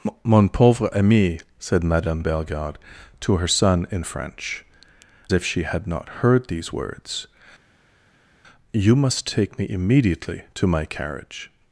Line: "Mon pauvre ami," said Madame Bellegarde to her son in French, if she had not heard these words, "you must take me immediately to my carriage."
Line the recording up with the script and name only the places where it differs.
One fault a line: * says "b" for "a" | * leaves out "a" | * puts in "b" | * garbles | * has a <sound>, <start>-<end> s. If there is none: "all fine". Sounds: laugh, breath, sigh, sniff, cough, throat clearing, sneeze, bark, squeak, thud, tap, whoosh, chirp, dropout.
all fine